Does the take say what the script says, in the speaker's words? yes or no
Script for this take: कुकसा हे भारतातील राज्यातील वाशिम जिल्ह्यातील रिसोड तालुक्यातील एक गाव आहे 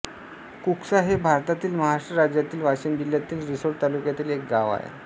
no